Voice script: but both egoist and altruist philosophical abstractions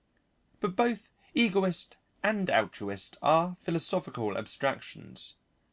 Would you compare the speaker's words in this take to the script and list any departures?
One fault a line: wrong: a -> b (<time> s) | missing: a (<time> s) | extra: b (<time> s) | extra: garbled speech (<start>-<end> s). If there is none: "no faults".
extra: are (3.2 s)